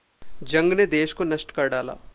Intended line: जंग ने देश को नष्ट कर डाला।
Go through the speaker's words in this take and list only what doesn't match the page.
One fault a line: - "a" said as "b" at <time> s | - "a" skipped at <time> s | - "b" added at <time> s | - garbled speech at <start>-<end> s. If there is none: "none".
none